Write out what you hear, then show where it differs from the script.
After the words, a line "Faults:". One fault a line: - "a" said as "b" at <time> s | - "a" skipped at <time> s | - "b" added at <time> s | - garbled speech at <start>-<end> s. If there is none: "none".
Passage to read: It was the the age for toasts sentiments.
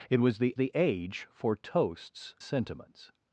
It was the the age for toasts sentiments.
Faults:
none